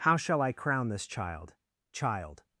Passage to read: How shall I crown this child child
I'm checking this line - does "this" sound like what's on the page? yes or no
yes